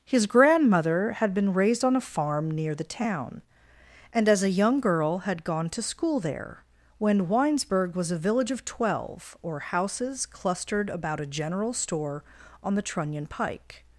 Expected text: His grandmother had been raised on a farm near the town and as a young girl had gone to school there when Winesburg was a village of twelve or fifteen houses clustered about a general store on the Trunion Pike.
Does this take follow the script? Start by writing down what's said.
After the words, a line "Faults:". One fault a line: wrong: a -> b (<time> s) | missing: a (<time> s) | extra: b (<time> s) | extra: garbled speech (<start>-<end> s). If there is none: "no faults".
His grandmother had been raised on a farm near the town and as a young girl had gone to school there when Winesburg was a village of twelve or houses clustered about a general store on the Trunion Pike.
Faults:
missing: fifteen (9.6 s)